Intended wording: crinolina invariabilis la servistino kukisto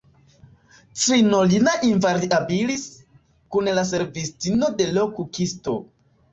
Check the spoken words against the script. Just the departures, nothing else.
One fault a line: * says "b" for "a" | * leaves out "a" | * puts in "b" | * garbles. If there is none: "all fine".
* puts in "kun"
* puts in "de l"